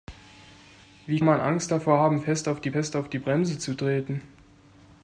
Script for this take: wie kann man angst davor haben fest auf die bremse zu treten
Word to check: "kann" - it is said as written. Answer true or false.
false